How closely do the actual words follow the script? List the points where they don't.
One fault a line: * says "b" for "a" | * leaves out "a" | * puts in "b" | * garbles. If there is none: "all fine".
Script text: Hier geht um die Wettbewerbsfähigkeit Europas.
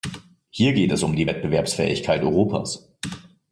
* puts in "es"